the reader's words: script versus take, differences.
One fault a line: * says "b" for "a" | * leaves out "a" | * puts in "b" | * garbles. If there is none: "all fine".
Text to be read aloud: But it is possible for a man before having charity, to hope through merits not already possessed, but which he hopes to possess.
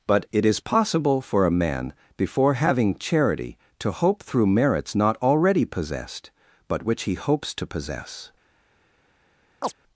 all fine